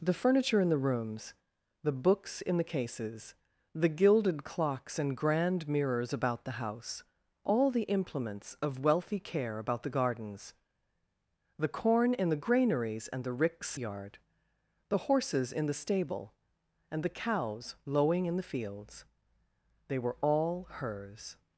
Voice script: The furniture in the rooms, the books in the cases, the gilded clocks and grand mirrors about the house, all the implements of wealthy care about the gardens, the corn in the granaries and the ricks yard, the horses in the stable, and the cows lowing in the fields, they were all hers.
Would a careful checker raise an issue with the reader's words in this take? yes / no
no